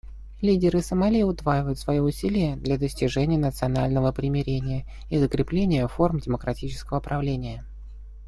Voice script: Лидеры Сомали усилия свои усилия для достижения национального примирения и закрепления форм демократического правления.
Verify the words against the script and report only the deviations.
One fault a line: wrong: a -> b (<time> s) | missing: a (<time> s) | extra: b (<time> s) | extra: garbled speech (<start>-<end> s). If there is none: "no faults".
wrong: усилия -> удваивают (1.2 s)